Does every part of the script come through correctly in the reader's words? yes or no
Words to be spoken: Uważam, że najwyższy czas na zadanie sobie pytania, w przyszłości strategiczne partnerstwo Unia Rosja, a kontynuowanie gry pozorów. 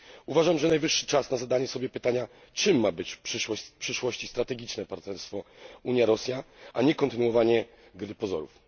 no